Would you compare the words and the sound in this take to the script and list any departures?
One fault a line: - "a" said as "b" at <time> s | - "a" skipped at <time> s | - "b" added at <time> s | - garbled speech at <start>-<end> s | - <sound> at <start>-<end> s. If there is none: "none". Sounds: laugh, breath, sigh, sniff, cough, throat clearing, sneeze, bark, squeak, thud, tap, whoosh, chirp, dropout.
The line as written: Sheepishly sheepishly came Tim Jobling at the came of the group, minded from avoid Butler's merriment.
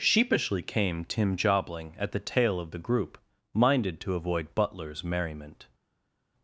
- "sheepishly" skipped at 0.6 s
- "came" said as "tail" at 2.2 s
- "from" said as "to" at 4.0 s